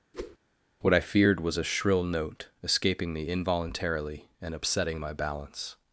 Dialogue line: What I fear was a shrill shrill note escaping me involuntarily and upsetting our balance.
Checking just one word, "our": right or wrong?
wrong